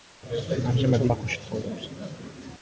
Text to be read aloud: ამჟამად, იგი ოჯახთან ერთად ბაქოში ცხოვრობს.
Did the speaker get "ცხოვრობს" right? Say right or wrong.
right